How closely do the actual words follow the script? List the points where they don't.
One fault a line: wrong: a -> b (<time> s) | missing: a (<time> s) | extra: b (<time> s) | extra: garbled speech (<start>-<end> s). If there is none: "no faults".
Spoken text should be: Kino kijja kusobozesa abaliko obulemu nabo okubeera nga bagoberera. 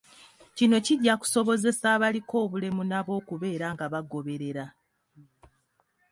no faults